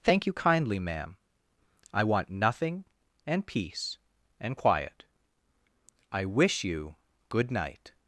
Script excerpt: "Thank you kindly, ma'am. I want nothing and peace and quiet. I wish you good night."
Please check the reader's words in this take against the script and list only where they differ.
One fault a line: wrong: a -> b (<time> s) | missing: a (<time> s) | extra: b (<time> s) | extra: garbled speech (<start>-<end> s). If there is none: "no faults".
no faults